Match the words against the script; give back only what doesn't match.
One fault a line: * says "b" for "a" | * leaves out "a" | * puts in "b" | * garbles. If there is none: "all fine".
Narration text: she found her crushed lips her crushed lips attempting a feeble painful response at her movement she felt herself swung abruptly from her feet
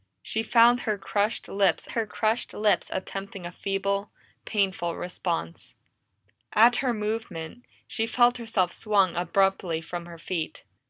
all fine